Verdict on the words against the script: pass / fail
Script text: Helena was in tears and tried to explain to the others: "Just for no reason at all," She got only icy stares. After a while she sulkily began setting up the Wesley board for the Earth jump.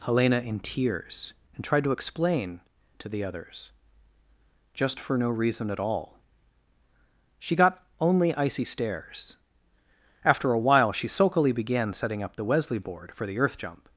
fail